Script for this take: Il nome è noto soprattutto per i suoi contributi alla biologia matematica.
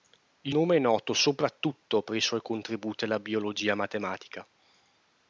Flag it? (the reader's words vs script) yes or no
no